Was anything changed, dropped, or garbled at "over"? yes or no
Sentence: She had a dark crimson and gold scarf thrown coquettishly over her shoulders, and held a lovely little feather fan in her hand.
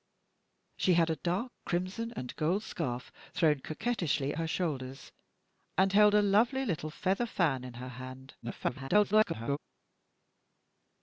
yes